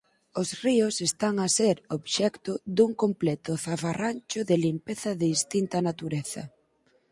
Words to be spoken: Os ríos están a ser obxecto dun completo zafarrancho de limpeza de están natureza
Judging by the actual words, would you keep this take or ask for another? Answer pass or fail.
fail